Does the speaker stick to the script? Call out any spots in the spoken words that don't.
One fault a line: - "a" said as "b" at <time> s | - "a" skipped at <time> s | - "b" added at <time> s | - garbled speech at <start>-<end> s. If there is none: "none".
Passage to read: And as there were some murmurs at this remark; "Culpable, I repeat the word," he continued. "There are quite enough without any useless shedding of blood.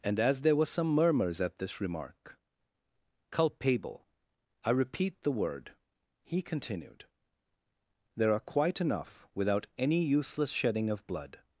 none